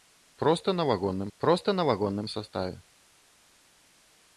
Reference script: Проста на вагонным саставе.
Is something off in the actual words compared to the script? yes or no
yes